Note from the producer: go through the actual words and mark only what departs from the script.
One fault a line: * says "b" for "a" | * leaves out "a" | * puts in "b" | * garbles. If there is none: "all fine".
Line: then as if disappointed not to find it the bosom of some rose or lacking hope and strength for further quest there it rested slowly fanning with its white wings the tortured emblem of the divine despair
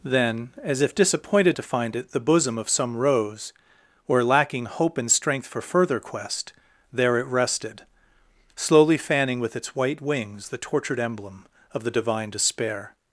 * leaves out "not"